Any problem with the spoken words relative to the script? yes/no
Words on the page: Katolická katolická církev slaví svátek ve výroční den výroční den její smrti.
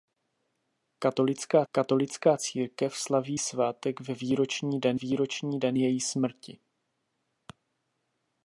no